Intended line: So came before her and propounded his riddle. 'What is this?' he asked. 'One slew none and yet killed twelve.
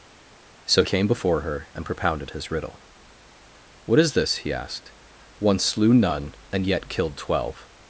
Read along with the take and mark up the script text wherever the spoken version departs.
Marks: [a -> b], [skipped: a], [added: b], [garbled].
So came before her and propounded his riddle. 'What is this?' he asked. 'One slew none and yet killed twelve.